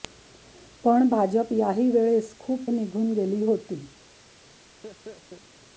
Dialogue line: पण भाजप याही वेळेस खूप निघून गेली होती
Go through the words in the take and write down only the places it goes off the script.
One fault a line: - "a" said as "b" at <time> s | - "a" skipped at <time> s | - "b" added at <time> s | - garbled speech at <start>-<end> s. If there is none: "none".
none